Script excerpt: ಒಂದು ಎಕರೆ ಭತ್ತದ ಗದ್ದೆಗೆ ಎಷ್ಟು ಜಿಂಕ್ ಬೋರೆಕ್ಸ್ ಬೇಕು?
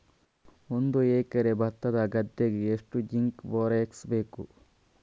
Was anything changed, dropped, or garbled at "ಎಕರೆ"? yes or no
no